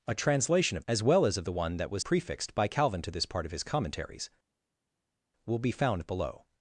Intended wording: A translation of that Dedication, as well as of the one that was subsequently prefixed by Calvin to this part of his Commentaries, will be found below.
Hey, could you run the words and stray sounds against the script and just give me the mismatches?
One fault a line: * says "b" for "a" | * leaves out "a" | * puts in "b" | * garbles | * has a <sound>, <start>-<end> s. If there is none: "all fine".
* leaves out "that Dedication"
* leaves out "subsequently"